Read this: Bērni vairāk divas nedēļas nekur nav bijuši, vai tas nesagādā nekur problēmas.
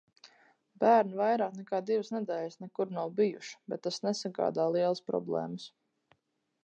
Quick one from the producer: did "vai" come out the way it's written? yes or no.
no